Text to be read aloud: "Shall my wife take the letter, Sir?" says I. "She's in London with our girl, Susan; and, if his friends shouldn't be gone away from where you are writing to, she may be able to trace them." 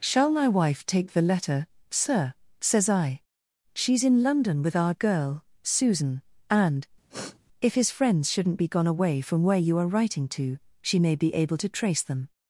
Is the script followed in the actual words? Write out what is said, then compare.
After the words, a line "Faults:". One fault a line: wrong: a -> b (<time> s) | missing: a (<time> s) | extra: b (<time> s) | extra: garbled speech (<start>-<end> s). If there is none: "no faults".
"Shall my wife take the letter, Sir?" says I. "She's in London with our girl, Susan; and, if his friends shouldn't be gone away from where you are writing to, she may be able to trace them."
Faults:
no faults